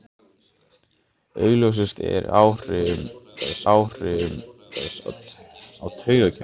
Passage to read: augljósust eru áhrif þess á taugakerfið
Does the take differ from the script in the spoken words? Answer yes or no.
yes